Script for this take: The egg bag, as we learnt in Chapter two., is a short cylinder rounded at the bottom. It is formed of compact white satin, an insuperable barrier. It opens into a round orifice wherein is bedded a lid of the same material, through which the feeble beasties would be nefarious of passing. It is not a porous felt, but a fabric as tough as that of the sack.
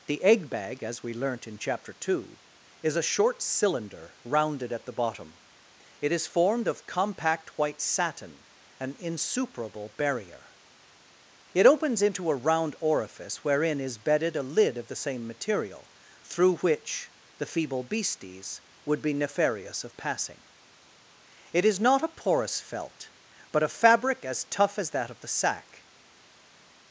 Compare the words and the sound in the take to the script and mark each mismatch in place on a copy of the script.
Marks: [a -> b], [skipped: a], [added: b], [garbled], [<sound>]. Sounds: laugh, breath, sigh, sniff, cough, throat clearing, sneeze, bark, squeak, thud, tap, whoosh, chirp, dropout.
The egg bag, as we learnt in Chapter two., is a short cylinder rounded at the bottom. It is formed of compact white satin, an insuperable barrier. It opens into a round orifice wherein is bedded a lid of the same material, through which the feeble beasties would be nefarious of passing. It is not a porous felt, but a fabric as tough as that of the sack.